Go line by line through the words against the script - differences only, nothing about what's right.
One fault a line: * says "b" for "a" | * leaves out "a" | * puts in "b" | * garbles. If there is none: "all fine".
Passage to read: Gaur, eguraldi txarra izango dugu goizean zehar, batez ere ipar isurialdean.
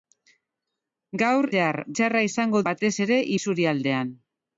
* says "zehar" for "eguraldi"
* leaves out "dugu goizean zehar"
* leaves out "ipar"